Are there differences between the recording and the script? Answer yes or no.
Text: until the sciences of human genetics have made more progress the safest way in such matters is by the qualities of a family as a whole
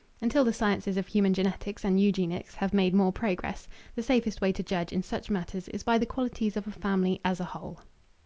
yes